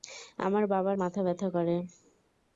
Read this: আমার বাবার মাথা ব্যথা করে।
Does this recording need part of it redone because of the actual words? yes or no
no